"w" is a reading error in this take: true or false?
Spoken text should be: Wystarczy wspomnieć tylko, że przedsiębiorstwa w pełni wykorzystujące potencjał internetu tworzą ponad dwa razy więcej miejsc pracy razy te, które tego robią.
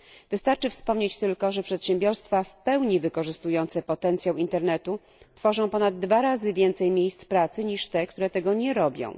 false